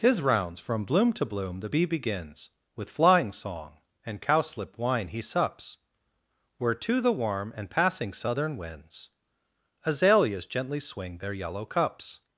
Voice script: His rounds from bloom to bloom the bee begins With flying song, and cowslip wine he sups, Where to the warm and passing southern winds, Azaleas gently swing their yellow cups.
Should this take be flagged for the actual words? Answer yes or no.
no